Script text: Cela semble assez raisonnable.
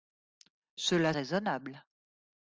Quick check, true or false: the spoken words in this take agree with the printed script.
false